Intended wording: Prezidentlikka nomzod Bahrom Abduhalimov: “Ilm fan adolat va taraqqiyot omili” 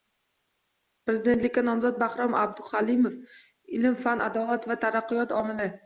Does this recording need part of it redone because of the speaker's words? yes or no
no